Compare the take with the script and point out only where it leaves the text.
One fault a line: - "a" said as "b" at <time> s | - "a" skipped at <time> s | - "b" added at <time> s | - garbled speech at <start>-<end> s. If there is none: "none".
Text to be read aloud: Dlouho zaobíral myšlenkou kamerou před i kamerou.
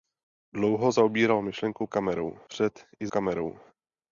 none